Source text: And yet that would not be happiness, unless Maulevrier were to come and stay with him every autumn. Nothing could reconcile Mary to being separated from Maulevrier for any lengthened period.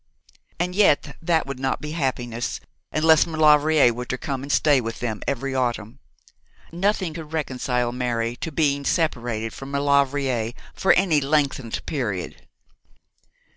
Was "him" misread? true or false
true